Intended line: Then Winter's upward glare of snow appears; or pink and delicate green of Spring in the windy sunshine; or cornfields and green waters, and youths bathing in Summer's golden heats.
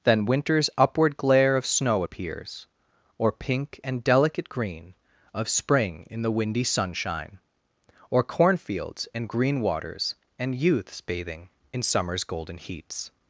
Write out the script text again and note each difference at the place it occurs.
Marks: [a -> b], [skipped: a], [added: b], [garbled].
Then Winter's upward glare of snow appears; or pink and delicate green of Spring in the windy sunshine; or cornfields and green waters, and youths bathing in Summer's golden heats.